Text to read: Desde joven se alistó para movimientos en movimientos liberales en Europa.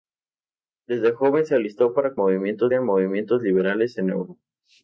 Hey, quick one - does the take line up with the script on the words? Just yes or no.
yes